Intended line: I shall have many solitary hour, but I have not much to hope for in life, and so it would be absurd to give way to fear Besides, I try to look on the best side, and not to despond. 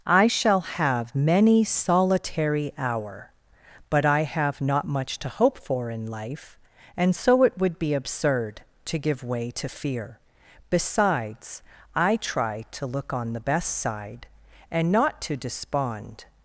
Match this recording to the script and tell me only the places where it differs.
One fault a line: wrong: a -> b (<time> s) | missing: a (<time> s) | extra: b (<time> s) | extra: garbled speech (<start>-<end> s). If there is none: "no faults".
no faults